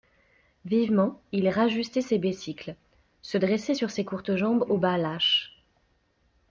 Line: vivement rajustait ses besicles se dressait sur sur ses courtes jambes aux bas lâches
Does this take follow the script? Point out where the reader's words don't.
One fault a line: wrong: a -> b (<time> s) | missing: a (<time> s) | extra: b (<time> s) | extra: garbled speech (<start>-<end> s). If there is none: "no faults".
extra: il (1.3 s)
missing: sur (3.9 s)